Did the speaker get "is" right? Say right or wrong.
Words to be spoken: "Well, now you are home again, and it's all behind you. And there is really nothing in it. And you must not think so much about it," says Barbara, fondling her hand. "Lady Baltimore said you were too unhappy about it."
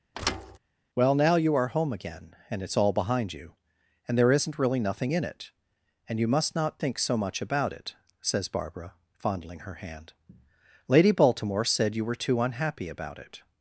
wrong